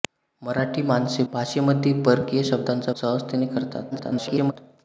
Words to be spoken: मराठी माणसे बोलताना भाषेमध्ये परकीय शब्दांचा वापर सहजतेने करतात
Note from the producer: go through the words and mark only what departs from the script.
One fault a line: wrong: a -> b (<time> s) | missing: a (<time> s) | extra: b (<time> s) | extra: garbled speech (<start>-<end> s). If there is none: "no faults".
missing: बोलताना (1.2 s)
missing: वापर (2.9 s)
extra: garbled speech (3.9-4.5 s)